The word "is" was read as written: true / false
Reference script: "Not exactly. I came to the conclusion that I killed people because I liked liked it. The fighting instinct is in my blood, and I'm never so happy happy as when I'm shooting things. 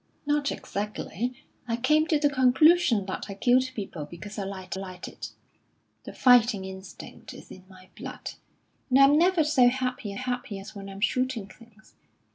true